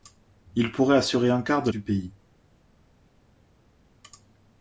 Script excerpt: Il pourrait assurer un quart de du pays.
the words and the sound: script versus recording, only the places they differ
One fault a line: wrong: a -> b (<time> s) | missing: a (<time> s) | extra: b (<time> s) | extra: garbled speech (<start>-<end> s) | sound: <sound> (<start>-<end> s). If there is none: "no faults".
no faults